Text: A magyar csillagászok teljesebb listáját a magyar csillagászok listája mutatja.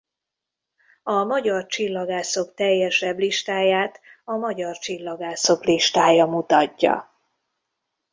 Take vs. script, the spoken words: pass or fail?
pass